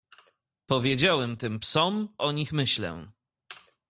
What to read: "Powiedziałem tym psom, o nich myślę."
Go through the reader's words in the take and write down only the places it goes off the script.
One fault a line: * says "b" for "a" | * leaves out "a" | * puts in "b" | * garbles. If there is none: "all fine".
all fine